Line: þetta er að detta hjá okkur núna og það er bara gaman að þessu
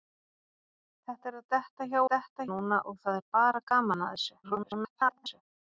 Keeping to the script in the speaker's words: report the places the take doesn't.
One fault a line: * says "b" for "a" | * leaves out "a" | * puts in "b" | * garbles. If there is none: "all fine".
* says "detta" for "okkur"
* garbles